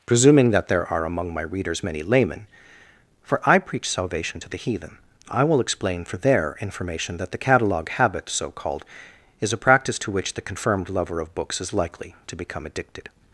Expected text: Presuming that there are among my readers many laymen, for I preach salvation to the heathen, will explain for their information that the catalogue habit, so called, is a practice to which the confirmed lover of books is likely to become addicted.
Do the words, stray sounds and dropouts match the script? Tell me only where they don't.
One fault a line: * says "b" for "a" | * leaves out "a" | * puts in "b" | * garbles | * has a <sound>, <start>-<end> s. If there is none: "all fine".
* puts in "I"